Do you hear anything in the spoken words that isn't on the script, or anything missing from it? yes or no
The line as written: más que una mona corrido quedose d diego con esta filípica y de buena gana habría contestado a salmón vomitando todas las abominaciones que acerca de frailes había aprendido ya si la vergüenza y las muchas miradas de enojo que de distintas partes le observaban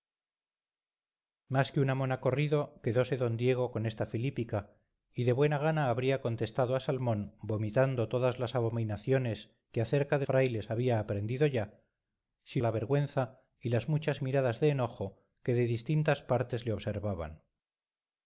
no